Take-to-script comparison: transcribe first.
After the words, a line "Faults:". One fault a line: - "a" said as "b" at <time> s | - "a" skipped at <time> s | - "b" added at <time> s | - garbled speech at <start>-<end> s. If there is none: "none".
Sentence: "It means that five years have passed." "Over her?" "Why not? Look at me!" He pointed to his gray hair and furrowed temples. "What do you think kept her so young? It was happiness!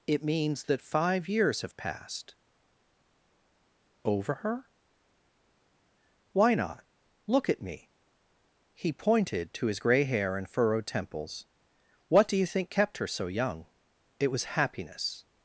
"It means that five years have passed." "Over her?" "Why not? Look at me!" He pointed to his gray hair and furrowed temples. "What do you think kept her so young? It was happiness!
Faults:
none